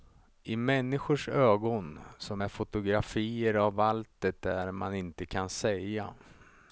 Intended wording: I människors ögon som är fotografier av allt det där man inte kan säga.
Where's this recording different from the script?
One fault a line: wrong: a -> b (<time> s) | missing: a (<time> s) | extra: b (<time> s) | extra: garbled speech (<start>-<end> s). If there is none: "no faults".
no faults